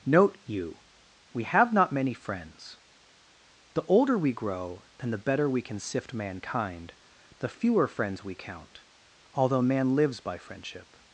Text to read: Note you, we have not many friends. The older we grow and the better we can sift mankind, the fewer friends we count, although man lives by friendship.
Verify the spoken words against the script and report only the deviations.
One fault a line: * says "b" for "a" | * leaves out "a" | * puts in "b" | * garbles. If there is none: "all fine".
all fine